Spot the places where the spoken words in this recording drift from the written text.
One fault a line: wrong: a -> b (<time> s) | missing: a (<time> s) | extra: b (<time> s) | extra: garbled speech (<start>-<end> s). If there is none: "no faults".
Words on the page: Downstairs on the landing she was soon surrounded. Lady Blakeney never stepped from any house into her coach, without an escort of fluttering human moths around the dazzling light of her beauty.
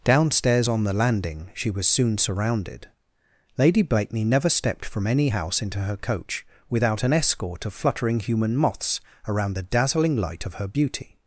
no faults